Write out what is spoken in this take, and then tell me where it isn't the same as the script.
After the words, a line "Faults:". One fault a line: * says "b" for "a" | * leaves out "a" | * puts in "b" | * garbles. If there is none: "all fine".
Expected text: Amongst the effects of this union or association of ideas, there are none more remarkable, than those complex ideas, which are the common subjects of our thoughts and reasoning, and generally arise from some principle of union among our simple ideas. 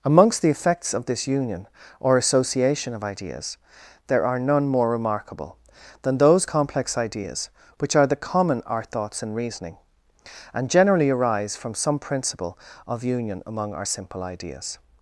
Amongst the effects of this union or association of ideas, there are none more remarkable, than those complex ideas, which are the common our thoughts and reasoning, and generally arise from some principle of union among our simple ideas.
Faults:
* leaves out "subjects of"